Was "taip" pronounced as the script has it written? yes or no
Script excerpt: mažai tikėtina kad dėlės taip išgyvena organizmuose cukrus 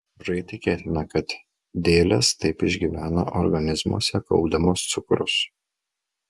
yes